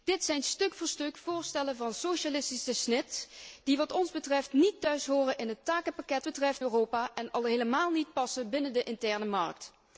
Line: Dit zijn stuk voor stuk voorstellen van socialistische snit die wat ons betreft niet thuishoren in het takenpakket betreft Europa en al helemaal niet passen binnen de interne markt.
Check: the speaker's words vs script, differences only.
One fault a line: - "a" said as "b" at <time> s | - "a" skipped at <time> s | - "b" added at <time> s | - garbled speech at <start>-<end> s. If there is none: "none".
none